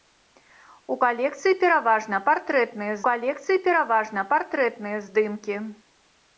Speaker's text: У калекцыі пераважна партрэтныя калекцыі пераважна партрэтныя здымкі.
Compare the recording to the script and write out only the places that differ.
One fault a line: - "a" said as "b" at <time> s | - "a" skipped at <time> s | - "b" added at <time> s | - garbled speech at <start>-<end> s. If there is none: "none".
none